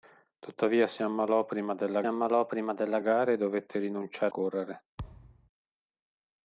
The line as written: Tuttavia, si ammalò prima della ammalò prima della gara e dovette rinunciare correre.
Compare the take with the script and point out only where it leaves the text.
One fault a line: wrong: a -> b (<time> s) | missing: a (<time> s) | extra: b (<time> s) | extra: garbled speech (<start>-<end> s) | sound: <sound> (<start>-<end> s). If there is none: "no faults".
sound: thud (5.0-5.5 s)